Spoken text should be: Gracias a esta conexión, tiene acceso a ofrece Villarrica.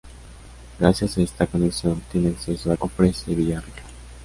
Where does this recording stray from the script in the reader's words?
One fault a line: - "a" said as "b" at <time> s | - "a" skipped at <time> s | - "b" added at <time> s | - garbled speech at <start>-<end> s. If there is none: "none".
none